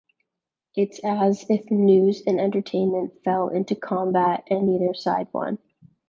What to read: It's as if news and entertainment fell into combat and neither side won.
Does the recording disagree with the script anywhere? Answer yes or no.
no